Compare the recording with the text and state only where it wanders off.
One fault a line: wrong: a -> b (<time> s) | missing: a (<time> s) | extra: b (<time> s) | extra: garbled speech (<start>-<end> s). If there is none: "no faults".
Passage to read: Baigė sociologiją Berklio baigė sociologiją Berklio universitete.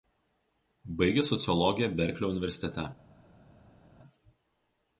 missing: baigė sociologiją Berklio (2.3 s)